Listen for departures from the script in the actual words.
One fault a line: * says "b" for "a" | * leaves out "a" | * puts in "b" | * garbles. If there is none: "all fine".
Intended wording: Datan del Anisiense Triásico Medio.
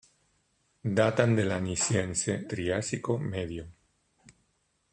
all fine